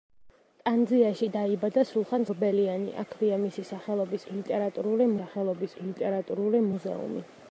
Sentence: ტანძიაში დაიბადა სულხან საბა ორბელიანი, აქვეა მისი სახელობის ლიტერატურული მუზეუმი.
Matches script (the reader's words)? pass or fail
fail